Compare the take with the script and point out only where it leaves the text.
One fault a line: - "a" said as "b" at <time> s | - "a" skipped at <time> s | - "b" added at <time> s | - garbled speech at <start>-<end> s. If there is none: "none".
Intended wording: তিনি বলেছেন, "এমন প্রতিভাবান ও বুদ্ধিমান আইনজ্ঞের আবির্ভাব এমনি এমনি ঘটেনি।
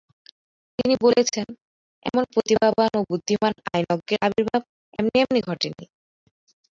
none